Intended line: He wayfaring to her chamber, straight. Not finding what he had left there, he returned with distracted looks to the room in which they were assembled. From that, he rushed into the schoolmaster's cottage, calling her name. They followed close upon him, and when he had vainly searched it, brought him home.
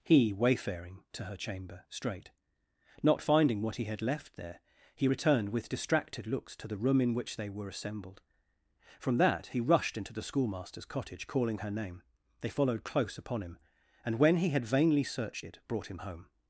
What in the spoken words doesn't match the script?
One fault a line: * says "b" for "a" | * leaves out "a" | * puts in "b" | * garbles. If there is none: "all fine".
all fine